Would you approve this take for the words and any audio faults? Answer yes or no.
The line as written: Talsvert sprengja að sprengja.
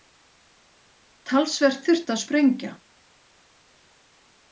no